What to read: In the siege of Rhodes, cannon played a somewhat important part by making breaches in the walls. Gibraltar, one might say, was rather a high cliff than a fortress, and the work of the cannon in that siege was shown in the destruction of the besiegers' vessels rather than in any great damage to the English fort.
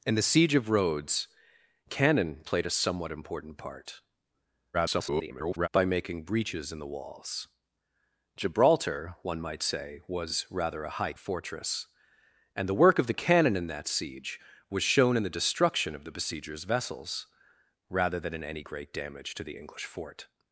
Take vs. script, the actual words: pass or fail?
fail